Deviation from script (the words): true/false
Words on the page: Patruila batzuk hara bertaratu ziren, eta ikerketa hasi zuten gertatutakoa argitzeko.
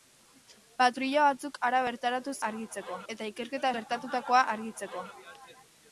true